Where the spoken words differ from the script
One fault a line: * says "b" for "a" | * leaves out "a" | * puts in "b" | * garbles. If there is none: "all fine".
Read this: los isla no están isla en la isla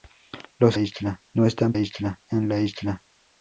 all fine